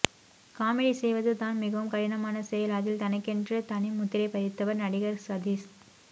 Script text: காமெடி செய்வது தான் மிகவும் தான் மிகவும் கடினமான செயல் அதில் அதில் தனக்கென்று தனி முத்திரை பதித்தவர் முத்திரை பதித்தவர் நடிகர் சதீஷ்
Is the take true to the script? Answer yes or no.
no